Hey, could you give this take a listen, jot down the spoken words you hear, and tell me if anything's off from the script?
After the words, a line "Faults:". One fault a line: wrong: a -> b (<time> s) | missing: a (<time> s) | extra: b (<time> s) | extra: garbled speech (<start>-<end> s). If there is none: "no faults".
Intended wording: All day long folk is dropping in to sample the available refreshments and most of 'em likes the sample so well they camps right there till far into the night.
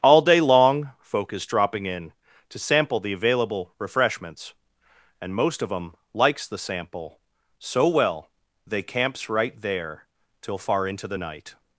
All day long folk is dropping in to sample the available refreshments and most of 'em likes the sample so well they camps right there till far into the night.
Faults:
no faults